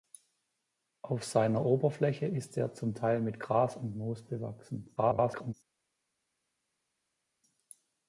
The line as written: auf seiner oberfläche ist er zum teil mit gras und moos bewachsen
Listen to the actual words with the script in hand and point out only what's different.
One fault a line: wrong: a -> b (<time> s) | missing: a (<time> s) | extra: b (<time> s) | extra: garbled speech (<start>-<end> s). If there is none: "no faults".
extra: garbled speech (5.0-5.5 s)